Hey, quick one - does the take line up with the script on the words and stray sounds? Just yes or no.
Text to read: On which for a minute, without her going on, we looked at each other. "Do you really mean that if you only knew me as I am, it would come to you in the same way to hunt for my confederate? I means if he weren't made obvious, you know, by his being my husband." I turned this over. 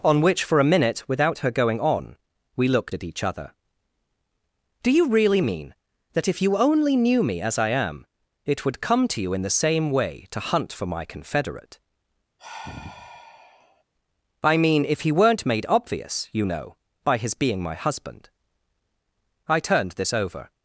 no